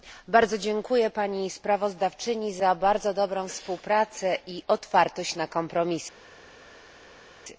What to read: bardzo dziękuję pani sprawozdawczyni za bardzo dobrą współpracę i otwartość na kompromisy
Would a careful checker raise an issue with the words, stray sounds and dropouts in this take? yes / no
no